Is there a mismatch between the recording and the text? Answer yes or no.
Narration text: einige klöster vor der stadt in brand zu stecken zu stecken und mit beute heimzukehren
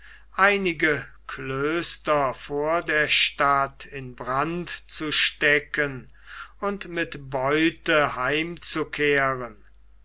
yes